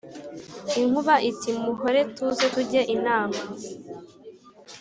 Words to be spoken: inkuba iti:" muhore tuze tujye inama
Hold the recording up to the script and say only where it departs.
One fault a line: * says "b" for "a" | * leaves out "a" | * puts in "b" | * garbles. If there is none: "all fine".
all fine